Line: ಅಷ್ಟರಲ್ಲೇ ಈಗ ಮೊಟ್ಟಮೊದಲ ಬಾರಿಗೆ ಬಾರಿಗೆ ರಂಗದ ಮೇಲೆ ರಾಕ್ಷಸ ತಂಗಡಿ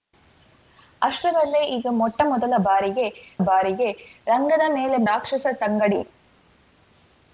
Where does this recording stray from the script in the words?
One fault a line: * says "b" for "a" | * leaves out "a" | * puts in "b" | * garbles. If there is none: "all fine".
all fine